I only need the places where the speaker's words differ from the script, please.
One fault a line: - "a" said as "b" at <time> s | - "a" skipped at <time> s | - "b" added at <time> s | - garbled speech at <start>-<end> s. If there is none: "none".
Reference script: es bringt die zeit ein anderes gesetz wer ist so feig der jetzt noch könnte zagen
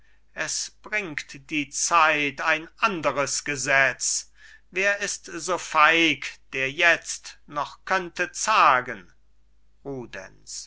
none